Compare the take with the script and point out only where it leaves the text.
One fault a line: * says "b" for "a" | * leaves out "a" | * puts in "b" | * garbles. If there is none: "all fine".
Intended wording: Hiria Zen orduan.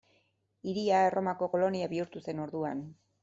* puts in "Erromako kolonia bihurtu"